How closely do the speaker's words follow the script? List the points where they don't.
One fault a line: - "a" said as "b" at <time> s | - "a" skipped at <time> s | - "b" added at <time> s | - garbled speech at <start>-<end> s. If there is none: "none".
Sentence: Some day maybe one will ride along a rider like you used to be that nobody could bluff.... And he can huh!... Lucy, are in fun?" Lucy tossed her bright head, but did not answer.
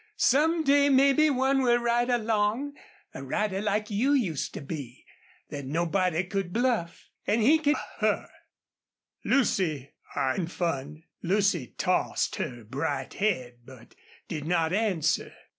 none